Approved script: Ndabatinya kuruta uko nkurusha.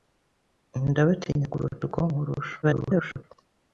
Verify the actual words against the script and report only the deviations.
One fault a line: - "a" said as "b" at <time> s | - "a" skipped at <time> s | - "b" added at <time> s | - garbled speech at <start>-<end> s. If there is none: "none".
- garbled speech at 2.6-3.2 s